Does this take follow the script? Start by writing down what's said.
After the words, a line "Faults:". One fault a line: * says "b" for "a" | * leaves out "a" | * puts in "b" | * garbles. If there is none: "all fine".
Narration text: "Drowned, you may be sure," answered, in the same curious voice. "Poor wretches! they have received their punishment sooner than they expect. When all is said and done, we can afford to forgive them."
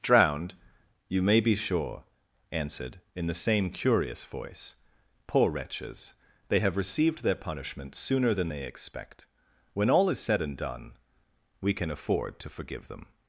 "Drowned, you may be sure," answered, in the same curious voice. "Poor wretches! they have received their punishment sooner than they expect. When all is said and done, we can afford to forgive them."
Faults:
all fine